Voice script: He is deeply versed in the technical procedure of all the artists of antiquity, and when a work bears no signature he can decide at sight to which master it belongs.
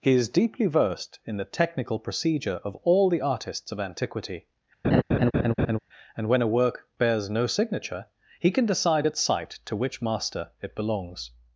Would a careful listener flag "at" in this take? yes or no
no